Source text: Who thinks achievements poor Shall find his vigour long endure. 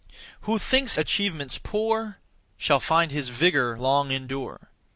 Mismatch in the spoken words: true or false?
false